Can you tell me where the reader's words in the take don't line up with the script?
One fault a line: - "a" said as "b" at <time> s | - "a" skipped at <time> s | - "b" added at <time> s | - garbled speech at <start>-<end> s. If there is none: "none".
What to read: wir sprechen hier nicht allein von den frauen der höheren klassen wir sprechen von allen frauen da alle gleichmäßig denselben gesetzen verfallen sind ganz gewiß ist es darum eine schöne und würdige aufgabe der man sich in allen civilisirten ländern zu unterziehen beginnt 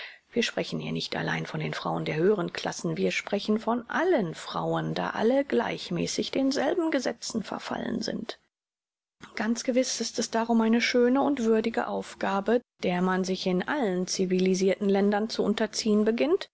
none